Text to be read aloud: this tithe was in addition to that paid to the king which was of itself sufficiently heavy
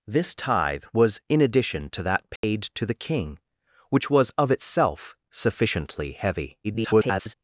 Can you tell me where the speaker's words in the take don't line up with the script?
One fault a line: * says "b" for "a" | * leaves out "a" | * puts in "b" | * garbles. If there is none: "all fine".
* garbles